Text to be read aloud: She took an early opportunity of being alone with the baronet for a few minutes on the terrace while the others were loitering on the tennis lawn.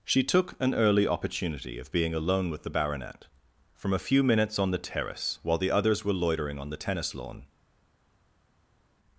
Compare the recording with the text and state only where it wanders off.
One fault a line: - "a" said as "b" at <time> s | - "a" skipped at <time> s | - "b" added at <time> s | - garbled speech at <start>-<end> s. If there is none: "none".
- "for" said as "from" at 3.8 s